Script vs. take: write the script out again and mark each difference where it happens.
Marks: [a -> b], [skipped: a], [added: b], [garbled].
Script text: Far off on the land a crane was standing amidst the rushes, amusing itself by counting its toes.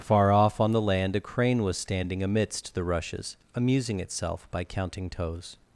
Far off on the land a crane was standing amidst the rushes, amusing itself by counting [skipped: its] toes.